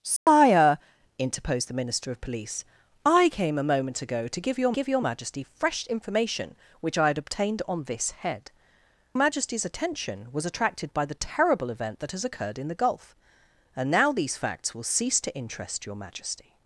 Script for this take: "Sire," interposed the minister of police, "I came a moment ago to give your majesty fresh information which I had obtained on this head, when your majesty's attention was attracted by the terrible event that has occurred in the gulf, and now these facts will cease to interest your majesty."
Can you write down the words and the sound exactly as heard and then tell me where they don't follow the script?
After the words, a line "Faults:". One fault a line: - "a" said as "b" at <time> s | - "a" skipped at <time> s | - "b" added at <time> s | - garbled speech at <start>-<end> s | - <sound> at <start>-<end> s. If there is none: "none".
"Sire," interposed the minister of police, "I came a moment ago to give your give your majesty fresh information which I had obtained on this head, majesty's attention was attracted by the terrible event that has occurred in the gulf, and now these facts will cease to interest your majesty."
Faults:
- dropout at 0.2-0.3 s
- "give your" added at 4.7 s
- "when your" skipped at 8.5 s